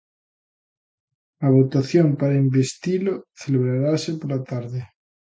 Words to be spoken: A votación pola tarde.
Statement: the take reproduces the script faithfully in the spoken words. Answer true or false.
false